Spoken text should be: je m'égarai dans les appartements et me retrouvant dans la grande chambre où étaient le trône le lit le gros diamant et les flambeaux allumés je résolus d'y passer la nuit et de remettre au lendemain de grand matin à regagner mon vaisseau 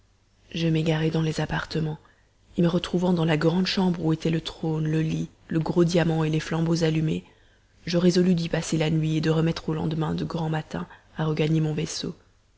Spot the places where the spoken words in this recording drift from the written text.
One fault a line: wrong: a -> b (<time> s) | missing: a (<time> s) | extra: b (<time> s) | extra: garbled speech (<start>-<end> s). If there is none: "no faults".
no faults